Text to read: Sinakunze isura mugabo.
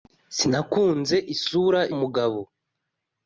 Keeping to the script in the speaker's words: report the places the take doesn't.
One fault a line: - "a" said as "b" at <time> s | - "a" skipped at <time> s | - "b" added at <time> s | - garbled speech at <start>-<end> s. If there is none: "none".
none